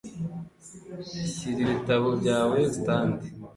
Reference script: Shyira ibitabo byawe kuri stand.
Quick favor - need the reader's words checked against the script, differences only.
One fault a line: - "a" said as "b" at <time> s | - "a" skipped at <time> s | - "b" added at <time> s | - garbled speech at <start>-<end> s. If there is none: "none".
- "kuri" skipped at 2.6 s